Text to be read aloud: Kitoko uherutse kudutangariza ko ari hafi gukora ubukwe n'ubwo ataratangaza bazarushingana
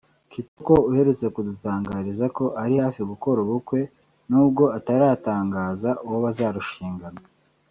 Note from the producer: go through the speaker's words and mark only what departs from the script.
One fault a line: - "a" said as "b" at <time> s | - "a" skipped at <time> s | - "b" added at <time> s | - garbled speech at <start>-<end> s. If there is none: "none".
- "uwo" added at 6.1 s